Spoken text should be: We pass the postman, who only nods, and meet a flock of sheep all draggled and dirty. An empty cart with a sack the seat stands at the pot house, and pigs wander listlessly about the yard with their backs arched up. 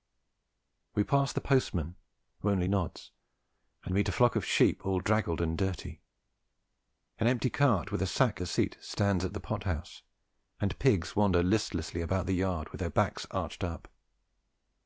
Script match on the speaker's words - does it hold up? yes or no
yes